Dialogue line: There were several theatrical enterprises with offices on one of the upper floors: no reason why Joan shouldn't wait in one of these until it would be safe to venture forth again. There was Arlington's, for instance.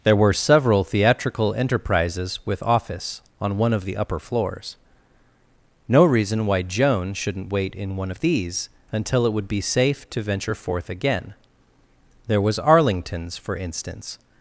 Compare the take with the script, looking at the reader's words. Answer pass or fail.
fail